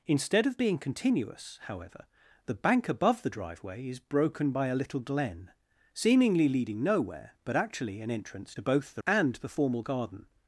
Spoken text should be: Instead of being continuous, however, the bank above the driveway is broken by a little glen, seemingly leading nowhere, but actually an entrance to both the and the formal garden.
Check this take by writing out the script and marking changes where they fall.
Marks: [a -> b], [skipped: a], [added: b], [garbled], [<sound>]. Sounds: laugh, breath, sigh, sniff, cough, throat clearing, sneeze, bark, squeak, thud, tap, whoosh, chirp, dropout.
Instead of being continuous, however, the bank above the driveway is broken by a little glen, seemingly leading nowhere, but actually an entrance to both the and the formal garden.